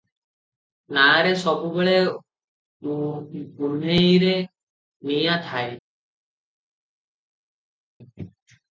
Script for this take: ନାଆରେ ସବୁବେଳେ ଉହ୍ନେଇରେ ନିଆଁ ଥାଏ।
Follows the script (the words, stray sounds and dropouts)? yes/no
yes